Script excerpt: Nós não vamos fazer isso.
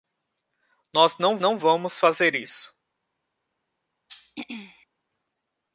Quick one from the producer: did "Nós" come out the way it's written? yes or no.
yes